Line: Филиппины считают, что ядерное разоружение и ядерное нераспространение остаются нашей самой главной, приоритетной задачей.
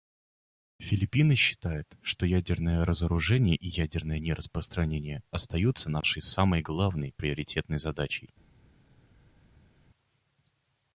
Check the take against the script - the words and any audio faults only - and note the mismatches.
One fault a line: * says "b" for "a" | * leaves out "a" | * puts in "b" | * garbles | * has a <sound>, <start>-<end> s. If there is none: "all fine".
all fine